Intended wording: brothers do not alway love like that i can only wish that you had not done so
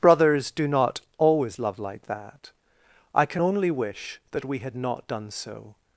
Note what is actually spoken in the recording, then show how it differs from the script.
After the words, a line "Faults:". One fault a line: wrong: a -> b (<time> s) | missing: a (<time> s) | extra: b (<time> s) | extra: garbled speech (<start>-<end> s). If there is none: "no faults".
brothers do not always love like that i can only wish that we had not done so
Faults:
wrong: alway -> always (1.2 s)
wrong: you -> we (4.5 s)